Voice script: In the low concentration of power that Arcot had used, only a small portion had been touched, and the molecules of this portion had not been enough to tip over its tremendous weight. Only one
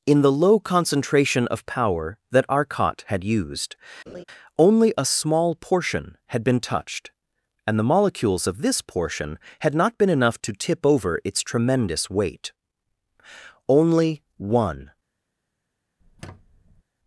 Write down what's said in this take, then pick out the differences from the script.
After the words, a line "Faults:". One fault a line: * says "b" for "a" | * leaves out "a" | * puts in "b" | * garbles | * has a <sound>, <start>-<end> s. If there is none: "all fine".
In the low concentration of power that Arcot had used, only a small portion had been touched, and the molecules of this portion had not been enough to tip over its tremendous weight. Only one
Faults:
* has a laugh, 4.1-4.2 s
* has a squeak, 16.0-16.8 s